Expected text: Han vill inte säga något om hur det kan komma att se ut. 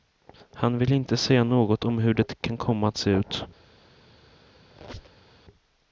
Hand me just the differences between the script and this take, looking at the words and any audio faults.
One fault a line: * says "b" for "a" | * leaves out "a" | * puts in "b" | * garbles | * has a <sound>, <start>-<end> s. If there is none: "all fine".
* has a squeak, 4.7-5.3 s